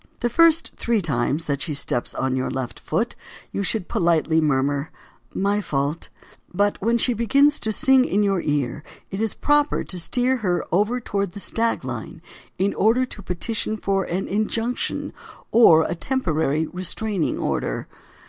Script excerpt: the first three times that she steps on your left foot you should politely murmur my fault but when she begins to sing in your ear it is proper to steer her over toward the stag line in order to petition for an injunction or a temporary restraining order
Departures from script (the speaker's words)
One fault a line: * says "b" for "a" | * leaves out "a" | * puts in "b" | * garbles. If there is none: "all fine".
all fine